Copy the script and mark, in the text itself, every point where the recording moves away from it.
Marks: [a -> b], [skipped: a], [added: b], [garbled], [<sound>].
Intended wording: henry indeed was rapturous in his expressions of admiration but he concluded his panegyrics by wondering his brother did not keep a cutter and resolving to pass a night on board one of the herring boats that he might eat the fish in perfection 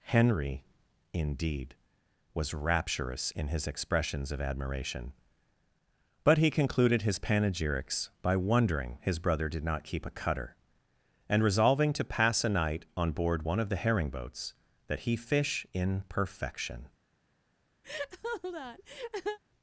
henry indeed was rapturous in his expressions of admiration but he concluded his panegyrics by wondering his brother did not keep a cutter and resolving to pass a night on board one of the herring boats that he [skipped: might eat the] fish in perfection [laugh]